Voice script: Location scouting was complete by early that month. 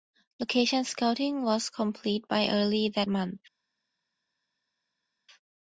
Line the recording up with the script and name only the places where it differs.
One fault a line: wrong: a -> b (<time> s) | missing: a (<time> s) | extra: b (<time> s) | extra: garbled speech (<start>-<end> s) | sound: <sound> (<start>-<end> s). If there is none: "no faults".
no faults